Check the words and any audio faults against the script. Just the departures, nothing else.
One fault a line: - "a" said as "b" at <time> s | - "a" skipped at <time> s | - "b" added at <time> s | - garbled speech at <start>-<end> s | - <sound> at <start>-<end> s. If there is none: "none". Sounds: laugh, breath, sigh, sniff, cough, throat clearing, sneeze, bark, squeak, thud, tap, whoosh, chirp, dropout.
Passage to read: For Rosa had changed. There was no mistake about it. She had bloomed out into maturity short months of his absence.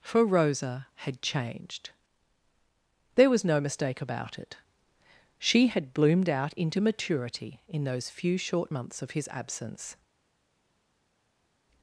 - "in those few" added at 7.7 s